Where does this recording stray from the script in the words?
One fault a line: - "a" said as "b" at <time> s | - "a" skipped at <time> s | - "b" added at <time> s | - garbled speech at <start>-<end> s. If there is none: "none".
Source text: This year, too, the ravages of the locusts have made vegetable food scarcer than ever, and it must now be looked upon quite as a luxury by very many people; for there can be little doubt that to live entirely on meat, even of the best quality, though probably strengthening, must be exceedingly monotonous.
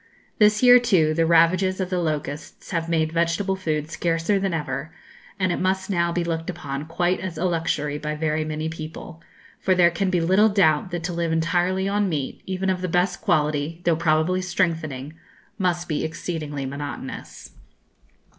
none